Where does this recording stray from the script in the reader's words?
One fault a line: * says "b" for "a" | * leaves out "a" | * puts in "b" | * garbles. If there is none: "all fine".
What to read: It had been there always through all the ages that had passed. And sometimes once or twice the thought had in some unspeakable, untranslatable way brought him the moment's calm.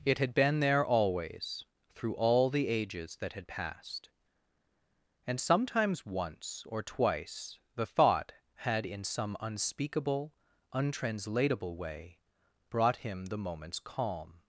all fine